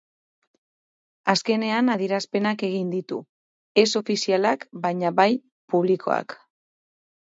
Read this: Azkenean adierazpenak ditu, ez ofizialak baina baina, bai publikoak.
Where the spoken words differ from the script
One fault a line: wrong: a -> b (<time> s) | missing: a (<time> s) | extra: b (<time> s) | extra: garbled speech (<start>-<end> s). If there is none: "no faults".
extra: egin (2.7 s)
missing: baina (5.2 s)